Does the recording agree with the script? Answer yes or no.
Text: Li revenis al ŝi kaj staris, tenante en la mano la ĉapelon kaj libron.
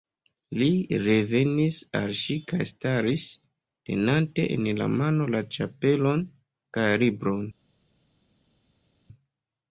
yes